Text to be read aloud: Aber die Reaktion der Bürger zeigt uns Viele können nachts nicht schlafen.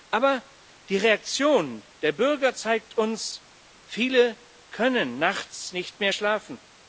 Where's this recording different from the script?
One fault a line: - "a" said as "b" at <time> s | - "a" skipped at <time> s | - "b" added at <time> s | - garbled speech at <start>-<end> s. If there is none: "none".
- "mehr" added at 6.0 s